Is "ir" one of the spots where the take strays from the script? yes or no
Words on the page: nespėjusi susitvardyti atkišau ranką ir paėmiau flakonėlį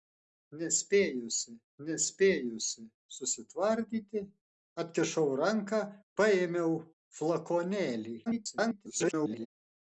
yes